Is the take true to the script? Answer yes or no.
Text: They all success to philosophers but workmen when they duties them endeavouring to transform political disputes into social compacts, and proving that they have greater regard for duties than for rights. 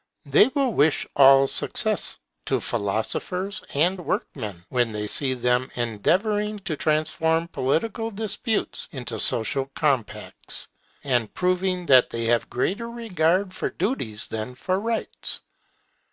no